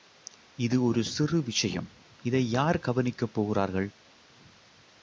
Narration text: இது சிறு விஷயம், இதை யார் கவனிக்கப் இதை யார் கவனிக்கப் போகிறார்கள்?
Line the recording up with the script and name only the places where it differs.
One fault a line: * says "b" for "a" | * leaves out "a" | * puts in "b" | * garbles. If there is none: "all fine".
* puts in "ஒரு"
* leaves out "இதை யார் கவனிக்கப்"